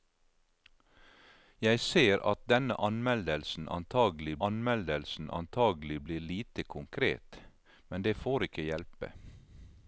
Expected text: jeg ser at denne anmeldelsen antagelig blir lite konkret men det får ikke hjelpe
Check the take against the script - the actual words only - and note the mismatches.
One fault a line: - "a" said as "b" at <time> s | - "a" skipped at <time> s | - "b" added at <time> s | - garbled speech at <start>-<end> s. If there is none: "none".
- "anmeldelsen antagelig" added at 4.5 s